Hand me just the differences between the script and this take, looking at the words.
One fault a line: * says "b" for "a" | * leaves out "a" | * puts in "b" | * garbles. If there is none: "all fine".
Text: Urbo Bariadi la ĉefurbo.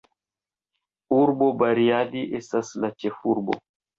* puts in "estas"